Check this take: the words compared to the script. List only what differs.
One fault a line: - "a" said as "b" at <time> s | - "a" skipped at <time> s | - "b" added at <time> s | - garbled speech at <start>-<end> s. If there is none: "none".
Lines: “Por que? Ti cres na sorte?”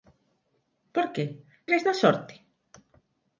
- "Ti" skipped at 1.2 s